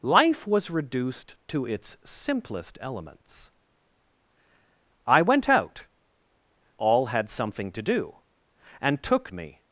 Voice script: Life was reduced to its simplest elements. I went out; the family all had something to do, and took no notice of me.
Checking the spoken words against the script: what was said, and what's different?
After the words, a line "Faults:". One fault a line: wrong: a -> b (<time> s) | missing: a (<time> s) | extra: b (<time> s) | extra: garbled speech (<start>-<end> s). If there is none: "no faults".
Life was reduced to its simplest elements. I went out; all had something to do, and took me.
Faults:
missing: the family (5.9 s)
missing: no notice of (9.3 s)